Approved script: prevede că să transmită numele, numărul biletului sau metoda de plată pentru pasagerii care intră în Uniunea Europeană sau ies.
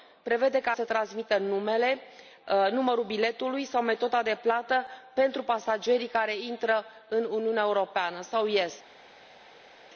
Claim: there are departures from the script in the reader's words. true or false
false